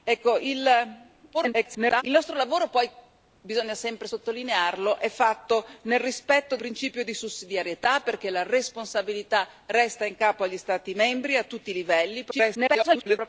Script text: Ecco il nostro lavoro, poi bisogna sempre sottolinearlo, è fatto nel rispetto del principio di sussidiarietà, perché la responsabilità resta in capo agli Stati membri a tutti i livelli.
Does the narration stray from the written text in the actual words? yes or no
yes